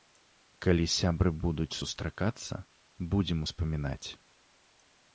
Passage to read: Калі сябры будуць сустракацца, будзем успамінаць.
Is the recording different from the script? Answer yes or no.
no